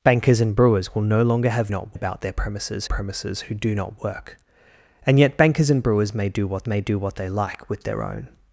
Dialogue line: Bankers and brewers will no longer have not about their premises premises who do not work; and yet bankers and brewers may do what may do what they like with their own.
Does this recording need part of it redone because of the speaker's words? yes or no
no